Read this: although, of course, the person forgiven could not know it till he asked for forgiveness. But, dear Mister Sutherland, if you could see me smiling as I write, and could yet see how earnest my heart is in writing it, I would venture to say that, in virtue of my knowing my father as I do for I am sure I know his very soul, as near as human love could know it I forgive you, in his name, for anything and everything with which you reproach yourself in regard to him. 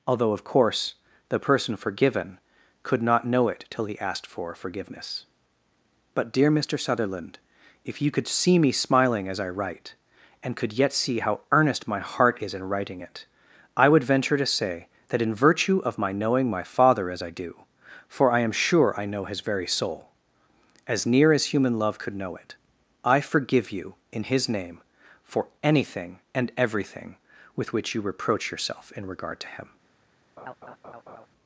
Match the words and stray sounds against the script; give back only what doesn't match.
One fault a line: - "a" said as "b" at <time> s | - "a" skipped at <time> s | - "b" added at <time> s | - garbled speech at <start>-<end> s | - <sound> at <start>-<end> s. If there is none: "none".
- laugh at 30.4-31.3 s